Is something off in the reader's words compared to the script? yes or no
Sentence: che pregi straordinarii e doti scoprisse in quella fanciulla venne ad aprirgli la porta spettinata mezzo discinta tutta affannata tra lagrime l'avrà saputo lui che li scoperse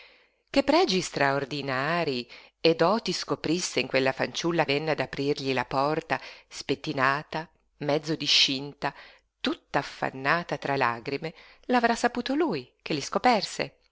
no